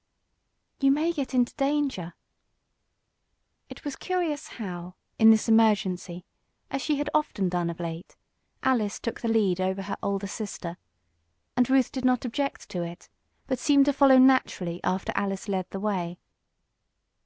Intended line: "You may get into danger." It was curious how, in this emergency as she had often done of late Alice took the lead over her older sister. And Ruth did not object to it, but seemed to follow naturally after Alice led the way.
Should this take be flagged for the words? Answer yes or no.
no